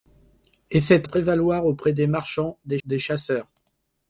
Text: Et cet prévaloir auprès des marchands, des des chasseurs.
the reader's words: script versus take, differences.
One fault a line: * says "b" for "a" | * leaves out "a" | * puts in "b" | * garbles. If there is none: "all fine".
all fine